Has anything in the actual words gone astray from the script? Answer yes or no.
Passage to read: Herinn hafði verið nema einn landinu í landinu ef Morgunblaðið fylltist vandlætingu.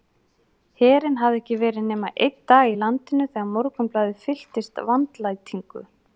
yes